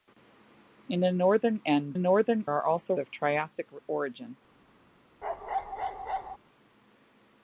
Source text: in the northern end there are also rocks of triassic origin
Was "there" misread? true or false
true